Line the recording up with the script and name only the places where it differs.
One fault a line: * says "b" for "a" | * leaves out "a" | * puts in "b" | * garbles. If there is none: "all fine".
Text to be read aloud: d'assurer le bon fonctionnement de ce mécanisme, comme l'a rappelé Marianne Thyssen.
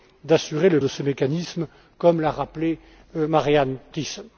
* leaves out "bon fonctionnement"